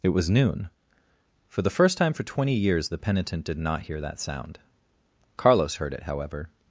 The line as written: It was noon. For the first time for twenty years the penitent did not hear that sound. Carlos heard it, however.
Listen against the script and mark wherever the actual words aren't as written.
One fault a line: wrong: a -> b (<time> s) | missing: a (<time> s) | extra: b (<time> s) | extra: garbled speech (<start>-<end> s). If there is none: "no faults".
no faults